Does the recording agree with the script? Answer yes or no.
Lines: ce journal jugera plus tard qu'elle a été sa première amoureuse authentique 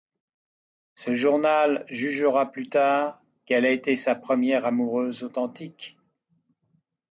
yes